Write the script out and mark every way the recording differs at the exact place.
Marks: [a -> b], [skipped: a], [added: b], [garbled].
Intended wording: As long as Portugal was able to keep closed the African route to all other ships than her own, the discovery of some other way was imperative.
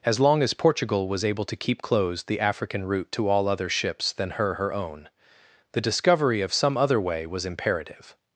As long as Portugal was able to keep closed the African route to all other ships than her [added: her] own, the discovery of some other way was imperative.